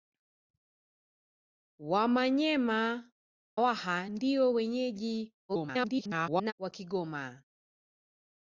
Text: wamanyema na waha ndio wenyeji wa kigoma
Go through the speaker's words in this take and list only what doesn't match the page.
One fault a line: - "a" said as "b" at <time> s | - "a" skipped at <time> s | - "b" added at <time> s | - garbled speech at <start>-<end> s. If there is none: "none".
- "na" skipped at 3.1 s
- garbled speech at 5.5-6.5 s